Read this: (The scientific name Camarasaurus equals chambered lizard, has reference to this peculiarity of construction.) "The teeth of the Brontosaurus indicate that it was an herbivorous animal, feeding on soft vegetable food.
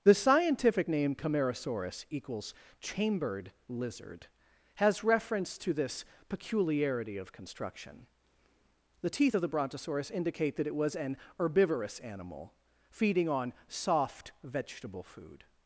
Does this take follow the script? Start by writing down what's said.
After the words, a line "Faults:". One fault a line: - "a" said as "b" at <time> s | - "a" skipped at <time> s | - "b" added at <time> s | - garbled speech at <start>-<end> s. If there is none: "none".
(The scientific name Camarasaurus equals chambered lizard, has reference to this peculiarity of construction.) "The teeth of the Brontosaurus indicate that it was an herbivorous animal, feeding on soft vegetable food.
Faults:
none